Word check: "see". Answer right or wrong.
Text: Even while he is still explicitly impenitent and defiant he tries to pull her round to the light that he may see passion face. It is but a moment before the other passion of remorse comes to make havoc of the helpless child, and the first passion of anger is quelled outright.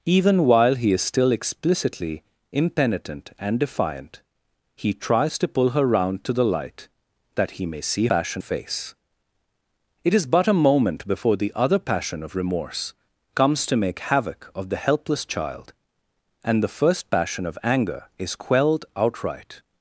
right